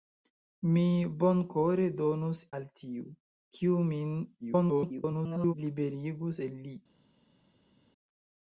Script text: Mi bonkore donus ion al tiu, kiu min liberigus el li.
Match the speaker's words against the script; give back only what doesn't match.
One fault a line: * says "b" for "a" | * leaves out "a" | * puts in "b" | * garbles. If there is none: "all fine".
* leaves out "ion"
* garbles